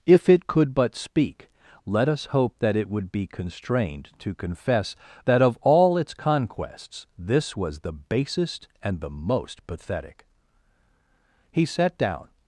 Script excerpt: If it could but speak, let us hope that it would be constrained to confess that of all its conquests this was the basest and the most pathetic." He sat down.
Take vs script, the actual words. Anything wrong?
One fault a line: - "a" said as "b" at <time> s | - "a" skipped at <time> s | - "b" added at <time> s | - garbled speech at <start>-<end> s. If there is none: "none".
none